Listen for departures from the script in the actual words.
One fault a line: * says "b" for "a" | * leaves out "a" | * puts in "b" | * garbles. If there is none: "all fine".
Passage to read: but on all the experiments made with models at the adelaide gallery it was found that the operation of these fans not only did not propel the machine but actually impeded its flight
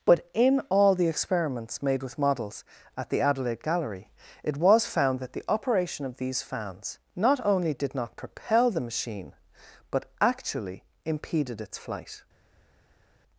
* says "in" for "on"